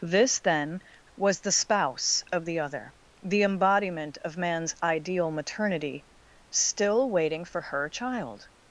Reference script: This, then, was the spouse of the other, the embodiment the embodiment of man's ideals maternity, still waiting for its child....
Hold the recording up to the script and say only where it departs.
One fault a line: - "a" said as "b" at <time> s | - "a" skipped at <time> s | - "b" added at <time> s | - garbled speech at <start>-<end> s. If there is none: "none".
- "the embodiment" skipped at 4.2 s
- "ideals" said as "ideal" at 4.8 s
- "its" said as "her" at 7.6 s